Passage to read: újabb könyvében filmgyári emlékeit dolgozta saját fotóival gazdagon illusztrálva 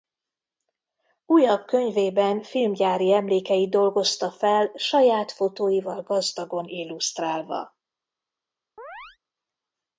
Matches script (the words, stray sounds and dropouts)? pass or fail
fail